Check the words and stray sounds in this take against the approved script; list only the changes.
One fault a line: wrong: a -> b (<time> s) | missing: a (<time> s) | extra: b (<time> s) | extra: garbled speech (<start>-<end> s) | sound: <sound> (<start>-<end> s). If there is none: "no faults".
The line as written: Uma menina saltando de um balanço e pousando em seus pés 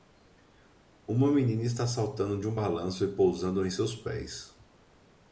extra: está (1.6 s)